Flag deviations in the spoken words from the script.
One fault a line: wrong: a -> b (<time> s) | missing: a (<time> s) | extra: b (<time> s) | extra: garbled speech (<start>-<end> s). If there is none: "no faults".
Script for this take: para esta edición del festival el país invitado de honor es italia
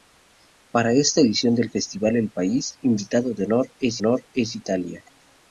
extra: honor es (4.0 s)